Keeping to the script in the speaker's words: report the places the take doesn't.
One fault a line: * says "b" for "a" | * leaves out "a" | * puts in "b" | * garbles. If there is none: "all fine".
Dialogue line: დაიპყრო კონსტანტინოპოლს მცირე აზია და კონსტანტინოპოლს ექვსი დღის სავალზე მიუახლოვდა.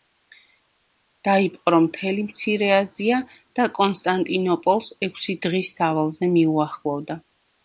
* says "მთელი" for "კონსტანტინოპოლს"